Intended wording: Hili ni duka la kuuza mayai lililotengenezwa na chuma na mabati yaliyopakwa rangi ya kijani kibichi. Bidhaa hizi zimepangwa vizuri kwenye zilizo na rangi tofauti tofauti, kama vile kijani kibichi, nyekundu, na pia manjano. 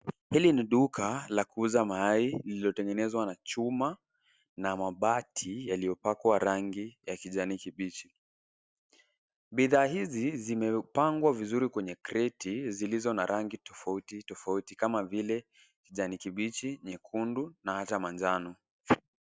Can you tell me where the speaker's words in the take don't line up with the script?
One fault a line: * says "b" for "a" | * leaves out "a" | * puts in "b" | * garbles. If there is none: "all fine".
* puts in "kreti"
* says "hata" for "pia"